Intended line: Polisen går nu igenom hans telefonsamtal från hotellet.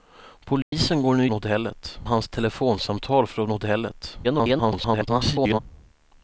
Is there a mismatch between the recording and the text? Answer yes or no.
yes